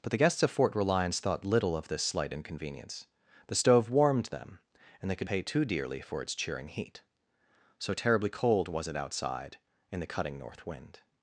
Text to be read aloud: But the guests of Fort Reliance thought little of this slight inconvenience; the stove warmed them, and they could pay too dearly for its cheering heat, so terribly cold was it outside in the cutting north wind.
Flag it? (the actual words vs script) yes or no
no